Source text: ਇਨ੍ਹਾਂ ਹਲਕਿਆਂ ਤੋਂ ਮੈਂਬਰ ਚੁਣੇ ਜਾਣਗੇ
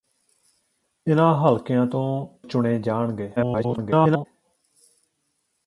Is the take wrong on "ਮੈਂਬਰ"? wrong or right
wrong